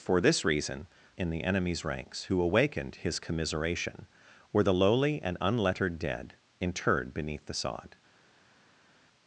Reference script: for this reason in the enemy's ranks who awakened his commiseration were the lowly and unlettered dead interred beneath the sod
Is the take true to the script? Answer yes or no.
yes